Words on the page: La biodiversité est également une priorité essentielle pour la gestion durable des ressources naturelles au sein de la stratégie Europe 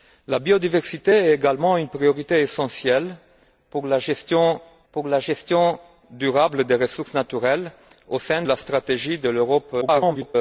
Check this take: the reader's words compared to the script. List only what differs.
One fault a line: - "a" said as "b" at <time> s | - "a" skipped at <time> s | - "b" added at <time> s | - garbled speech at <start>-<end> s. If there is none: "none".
- "pour la gestion" added at 4.9 s
- "de" skipped at 8.4 s
- garbled speech at 9.8-10.4 s